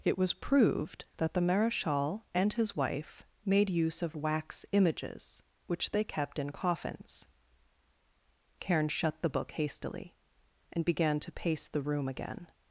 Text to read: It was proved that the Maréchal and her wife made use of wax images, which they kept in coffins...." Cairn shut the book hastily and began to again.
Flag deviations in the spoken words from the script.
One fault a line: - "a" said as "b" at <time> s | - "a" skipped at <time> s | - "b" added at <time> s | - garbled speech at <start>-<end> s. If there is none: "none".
- "her" said as "his" at 2.5 s
- "pace the room" added at 11.3 s